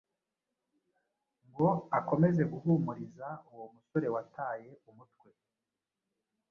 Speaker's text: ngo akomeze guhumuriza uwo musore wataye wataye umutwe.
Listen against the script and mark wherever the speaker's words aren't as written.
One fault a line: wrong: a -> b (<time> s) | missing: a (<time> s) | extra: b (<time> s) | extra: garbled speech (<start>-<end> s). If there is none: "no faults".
missing: wataye (4.7 s)